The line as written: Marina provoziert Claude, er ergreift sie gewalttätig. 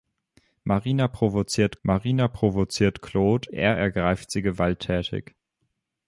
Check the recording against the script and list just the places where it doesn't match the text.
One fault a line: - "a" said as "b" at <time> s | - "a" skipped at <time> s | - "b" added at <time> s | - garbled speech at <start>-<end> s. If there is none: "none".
- "marina provoziert" added at 1.8 s